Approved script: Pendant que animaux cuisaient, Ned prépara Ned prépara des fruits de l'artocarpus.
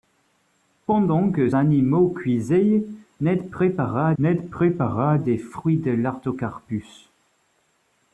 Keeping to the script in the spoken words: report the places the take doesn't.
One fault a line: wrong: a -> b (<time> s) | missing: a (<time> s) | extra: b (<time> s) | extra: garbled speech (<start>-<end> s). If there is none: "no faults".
no faults